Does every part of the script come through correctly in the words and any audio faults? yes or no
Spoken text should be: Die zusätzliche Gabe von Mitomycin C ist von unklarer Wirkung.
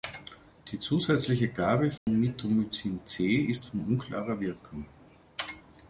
no